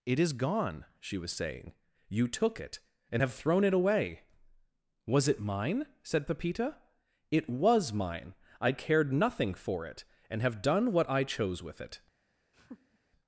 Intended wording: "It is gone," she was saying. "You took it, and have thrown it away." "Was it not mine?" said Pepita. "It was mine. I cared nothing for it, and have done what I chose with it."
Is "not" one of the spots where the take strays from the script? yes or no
yes